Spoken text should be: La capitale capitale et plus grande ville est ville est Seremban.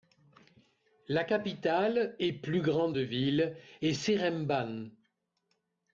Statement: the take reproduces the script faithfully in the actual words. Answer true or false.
false